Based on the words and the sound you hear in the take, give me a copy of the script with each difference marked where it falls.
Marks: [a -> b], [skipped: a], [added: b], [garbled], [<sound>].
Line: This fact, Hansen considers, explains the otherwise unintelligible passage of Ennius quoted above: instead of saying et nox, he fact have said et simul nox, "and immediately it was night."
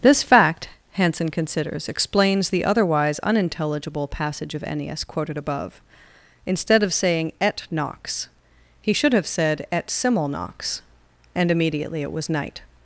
This fact, Hansen considers, explains the otherwise unintelligible passage of Ennius quoted above: instead of saying et nox, he [fact -> should] have said et simul nox, "and immediately it was night."